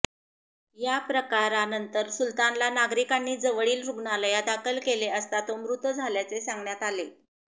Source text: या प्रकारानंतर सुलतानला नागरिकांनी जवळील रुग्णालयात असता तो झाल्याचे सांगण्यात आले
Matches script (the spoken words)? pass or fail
fail